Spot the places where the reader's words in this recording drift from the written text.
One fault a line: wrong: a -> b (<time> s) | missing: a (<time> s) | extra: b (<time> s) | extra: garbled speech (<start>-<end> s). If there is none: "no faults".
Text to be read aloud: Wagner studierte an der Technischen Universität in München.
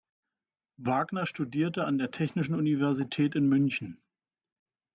no faults